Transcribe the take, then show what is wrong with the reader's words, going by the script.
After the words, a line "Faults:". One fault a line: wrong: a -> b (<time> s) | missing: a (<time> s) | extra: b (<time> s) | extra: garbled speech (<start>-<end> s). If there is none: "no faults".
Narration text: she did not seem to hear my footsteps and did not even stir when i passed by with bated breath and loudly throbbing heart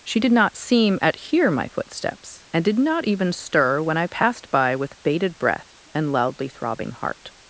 she did not seem at hear my footsteps and did not even stir when i passed by with bated breath and loudly throbbing heart
Faults:
wrong: to -> at (1.0 s)